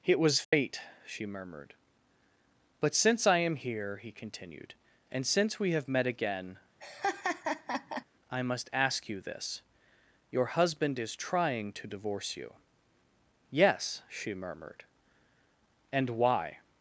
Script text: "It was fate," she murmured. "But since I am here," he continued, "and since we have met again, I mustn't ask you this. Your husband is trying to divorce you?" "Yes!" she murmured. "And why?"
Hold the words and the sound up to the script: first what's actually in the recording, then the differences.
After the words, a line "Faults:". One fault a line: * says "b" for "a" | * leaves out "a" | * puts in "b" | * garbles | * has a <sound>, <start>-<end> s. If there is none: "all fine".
"It was fate," she murmured. "But since I am here," he continued, "and since we have met again, I must ask you this. Your husband is trying to divorce you?" "Yes!" she murmured. "And why?"
Faults:
* has a dropout, 0.4-0.5 s
* has a laugh, 6.8-8.0 s
* says "must" for "mustn't"